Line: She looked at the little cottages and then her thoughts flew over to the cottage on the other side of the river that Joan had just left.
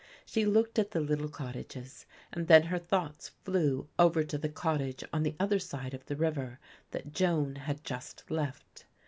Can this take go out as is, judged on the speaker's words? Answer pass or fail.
pass